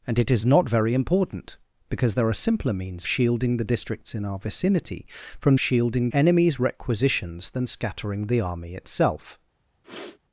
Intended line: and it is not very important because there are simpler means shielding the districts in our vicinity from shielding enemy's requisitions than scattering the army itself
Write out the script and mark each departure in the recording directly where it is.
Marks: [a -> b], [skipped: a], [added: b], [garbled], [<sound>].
and it is not very important because there are simpler means shielding the districts in our vicinity from shielding enemy's requisitions than scattering the army itself [sniff]